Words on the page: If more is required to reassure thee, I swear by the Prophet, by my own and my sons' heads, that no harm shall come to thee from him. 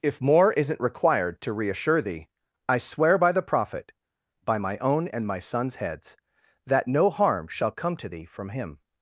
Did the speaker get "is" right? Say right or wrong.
wrong